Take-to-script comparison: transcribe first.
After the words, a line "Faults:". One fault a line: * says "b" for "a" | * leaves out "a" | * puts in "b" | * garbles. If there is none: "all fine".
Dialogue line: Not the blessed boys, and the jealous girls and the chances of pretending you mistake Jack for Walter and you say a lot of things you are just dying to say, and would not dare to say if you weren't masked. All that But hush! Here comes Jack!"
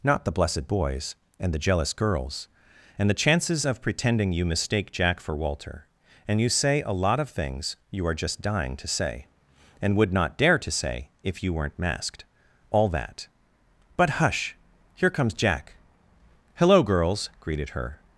Not the blessed boys, and the jealous girls and the chances of pretending you mistake Jack for Walter and you say a lot of things you are just dying to say, and would not dare to say if you weren't masked. All that But hush! Here comes Jack!" "Hello, girls," greeted her
Faults:
* puts in "Hello girls greeted her"